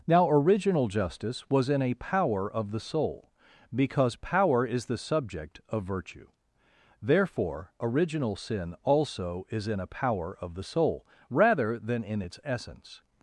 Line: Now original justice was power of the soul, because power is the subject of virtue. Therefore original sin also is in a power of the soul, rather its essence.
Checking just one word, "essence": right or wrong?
right